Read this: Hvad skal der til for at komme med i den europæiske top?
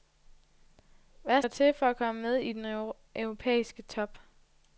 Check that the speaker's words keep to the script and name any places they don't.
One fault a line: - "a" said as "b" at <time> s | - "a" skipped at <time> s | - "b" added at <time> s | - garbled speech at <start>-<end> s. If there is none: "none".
- "skal" skipped at 1.4 s